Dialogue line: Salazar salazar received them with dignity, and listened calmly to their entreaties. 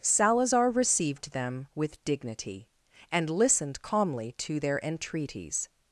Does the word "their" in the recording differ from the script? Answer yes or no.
no